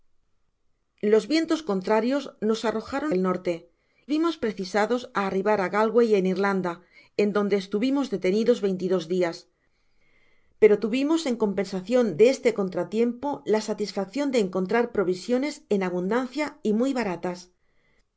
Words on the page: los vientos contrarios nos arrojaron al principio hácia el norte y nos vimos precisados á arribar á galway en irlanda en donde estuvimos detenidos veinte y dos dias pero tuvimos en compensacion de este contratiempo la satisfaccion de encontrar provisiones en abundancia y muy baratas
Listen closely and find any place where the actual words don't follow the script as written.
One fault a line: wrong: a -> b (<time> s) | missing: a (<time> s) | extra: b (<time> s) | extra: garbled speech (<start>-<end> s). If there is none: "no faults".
missing: al principio hácia (3.1 s)
missing: y nos (3.5 s)